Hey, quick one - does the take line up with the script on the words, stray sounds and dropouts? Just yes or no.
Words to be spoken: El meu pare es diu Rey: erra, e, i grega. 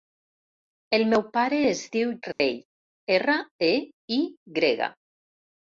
no